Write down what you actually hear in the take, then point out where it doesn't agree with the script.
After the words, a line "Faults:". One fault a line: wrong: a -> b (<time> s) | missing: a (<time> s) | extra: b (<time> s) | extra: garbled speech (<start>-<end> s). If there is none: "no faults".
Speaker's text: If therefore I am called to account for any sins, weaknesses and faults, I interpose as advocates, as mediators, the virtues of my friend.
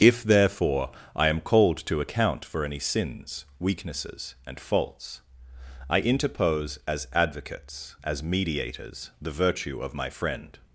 If therefore I am called to account for any sins, weaknesses and faults, I interpose as advocates, as mediators, the virtue of my friend.
Faults:
wrong: virtues -> virtue (9.3 s)